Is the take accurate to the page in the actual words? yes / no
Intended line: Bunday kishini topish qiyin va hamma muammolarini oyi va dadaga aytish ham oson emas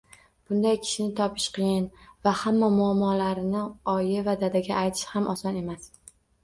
yes